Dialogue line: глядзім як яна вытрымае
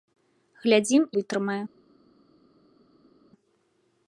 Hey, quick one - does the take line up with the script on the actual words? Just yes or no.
no